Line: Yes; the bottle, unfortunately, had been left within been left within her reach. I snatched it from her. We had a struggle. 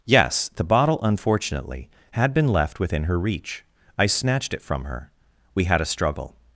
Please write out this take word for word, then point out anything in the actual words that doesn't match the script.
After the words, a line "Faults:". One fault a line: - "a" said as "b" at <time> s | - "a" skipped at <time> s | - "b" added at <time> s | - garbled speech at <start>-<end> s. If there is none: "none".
Yes; the bottle, unfortunately, had been left within her reach. I snatched it from her. We had a struggle.
Faults:
- "been left within" skipped at 3.0 s